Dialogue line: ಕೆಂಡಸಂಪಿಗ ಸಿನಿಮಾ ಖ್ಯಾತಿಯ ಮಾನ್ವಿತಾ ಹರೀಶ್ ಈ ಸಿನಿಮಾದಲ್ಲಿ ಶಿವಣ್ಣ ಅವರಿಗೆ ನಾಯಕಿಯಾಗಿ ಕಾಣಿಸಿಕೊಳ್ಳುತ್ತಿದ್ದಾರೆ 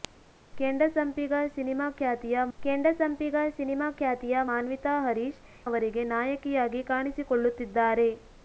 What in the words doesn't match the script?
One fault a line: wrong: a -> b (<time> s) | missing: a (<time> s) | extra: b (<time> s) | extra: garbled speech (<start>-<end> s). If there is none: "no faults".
wrong: ಮಾನ್ವಿತಾ ಹರೀಶ್ ಈ ಸಿನಿಮಾದಲ್ಲಿ ಶಿವಣ್ಣ -> ಕೆಂಡಸಂಪಿಗ ಸಿನಿಮಾ ಖ್ಯಾತಿಯ ಮಾನ್ವಿತಾ ಹರೀಶ್ (2.6 s)